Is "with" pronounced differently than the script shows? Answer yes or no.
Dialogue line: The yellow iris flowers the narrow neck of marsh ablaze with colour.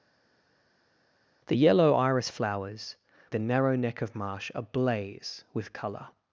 no